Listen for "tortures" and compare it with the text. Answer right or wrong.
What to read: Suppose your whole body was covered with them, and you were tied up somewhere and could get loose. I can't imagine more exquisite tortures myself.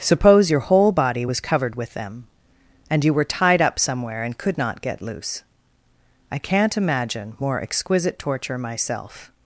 wrong